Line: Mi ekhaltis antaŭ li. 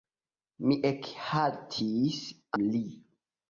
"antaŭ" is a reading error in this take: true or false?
true